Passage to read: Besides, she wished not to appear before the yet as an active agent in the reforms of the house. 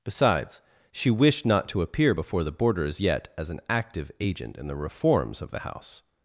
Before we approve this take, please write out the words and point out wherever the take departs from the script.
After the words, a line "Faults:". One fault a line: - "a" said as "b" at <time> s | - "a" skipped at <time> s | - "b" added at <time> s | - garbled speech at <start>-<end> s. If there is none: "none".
Besides, she wished not to appear before the boarders yet as an active agent in the reforms of the house.
Faults:
- "boarders" added at 2.5 s